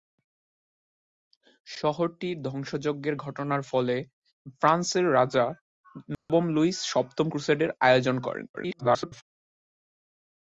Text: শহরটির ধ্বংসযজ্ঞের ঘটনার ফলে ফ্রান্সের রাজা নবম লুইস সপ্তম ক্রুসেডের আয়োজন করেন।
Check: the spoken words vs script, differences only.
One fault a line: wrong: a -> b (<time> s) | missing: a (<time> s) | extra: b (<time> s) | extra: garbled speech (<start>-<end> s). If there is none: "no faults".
extra: garbled speech (8.5-9.2 s)